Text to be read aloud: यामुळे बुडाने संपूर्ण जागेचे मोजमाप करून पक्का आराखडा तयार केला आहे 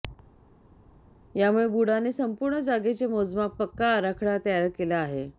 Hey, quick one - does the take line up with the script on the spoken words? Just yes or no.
no